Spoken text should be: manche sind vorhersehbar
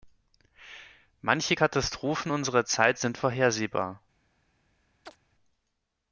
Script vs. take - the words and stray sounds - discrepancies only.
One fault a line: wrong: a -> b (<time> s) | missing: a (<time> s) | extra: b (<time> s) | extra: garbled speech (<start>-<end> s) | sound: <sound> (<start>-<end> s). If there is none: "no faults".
extra: katastrophen unserer zeit (1.5 s)
sound: chirp (5.1-5.2 s)